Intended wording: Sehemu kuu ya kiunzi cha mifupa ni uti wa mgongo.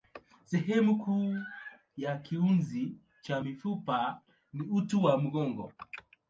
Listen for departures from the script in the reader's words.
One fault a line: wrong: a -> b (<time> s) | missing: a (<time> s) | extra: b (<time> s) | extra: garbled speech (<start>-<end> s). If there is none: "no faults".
no faults